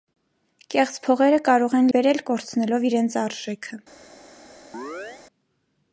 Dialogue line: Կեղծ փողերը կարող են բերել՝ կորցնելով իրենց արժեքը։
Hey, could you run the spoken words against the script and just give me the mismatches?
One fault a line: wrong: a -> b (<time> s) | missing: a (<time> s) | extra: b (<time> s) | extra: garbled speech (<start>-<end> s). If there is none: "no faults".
no faults